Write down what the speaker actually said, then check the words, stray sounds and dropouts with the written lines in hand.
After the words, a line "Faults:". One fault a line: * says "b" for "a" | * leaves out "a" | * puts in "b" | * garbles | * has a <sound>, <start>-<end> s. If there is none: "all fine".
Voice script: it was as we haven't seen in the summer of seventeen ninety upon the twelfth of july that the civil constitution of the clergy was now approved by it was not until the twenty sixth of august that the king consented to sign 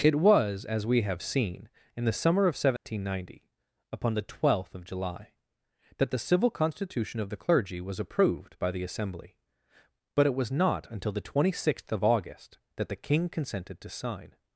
it was as we have seen in the summer of seventeen ninety upon the twelfth of july that the civil constitution of the clergy was approved by the assembly but it was not until the twenty sixth of august that the king consented to sign
Faults:
* says "have" for "haven't"
* has a dropout, 2.8-2.8 s
* leaves out "now"
* puts in "the assembly but"